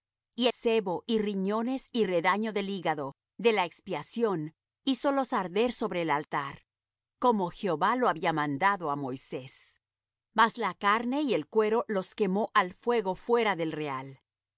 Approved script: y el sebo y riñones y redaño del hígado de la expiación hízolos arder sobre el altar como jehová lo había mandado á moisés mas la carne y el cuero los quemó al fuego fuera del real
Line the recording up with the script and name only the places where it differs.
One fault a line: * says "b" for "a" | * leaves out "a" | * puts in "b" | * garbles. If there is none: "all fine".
* leaves out "el"